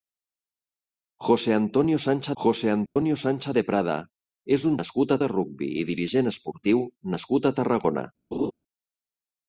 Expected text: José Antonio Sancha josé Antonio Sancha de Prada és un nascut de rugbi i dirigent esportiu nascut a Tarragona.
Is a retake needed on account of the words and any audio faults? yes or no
yes